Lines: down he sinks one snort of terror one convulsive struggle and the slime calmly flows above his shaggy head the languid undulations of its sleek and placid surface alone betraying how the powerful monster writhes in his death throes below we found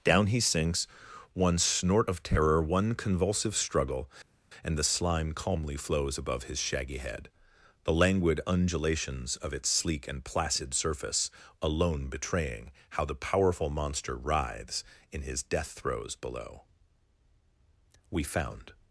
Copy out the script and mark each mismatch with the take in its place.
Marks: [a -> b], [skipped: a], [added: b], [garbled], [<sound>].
down he sinks one snort of terror one convulsive struggle and the slime calmly flows above his shaggy head the languid undulations of its sleek and placid surface alone betraying how the powerful monster writhes in his death throes below we found